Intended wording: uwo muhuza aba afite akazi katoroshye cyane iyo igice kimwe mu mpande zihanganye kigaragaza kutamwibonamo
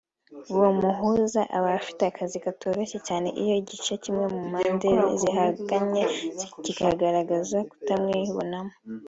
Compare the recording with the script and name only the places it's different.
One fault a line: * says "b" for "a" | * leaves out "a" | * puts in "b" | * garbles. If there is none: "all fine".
all fine